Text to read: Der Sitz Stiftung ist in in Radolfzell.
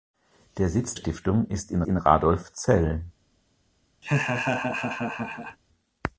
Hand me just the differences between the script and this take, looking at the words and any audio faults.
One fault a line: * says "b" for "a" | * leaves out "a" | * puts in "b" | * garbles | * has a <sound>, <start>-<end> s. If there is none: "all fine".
* has a laugh, 4.0-5.6 s